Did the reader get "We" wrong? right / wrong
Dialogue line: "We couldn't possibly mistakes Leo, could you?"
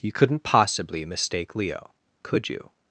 wrong